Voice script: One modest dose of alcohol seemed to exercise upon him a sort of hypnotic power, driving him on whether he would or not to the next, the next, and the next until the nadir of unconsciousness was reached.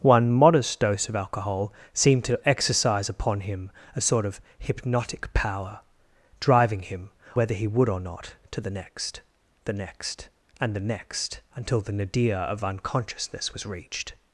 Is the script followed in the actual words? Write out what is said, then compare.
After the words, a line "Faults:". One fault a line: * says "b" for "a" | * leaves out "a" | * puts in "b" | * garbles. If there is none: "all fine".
One modest dose of alcohol seemed to exercise upon him a sort of hypnotic power, driving him whether he would or not to the next, the next, and the next until the nadir of unconsciousness was reached.
Faults:
* leaves out "on"